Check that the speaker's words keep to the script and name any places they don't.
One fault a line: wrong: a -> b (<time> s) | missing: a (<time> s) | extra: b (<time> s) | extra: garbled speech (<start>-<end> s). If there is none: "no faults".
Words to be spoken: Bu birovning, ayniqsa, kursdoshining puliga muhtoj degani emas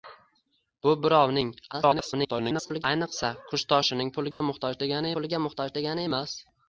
extra: garbled speech (1.7-2.8 s)
extra: puliga muhtoj degani (5.2 s)